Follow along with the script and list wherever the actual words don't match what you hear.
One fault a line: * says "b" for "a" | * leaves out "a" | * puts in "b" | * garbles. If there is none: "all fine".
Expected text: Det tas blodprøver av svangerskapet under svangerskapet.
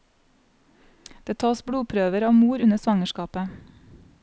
* says "mor" for "svangerskapet"